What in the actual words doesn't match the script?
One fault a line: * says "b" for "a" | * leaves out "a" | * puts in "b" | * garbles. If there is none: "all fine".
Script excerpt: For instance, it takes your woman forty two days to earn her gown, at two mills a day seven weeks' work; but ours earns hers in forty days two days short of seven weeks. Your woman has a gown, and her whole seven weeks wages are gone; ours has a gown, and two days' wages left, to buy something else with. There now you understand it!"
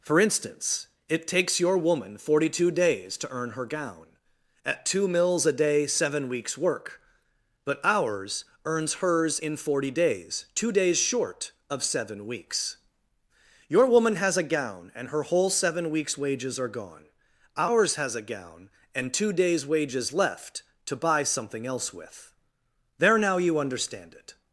all fine